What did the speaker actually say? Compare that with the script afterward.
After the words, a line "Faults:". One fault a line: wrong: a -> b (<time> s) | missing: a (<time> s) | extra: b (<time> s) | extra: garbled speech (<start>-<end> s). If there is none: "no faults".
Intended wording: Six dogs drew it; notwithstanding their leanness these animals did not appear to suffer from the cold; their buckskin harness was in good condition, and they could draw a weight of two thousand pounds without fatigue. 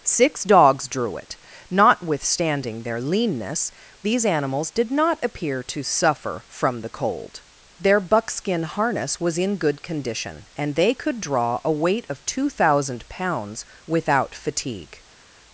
Six dogs drew it; notwithstanding their leanness these animals did not appear to suffer from the cold; their buckskin harness was in good condition, and they could draw a weight of two thousand pounds without fatigue.
Faults:
no faults